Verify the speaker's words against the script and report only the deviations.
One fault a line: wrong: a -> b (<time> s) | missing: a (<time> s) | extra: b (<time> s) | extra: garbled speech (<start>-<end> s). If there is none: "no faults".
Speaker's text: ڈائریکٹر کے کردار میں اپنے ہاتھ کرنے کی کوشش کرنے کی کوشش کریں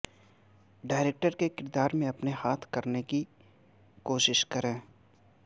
missing: کرنے کی کوشش (4.4 s)